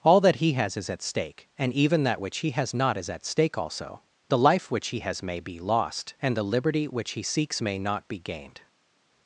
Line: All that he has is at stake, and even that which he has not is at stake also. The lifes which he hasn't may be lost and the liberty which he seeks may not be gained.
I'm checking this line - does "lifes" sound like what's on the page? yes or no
no